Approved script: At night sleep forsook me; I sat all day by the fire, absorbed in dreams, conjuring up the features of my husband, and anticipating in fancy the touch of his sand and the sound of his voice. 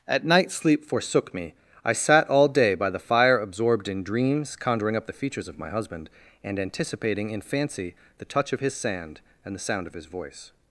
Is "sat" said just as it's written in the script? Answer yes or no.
yes